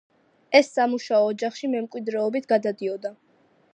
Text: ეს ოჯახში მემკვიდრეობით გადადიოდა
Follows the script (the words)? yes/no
no